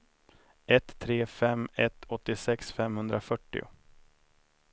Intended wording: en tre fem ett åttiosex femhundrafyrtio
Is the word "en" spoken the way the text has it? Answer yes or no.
no